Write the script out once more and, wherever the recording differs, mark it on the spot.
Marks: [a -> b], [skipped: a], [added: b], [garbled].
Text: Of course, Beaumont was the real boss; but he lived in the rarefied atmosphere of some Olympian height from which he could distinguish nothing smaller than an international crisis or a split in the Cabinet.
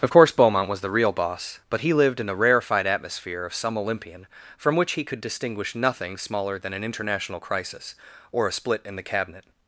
Of course, Beaumont was the real boss; but he lived in the rarefied atmosphere of some Olympian [skipped: height] from which he could distinguish nothing smaller than an international crisis or a split in the Cabinet.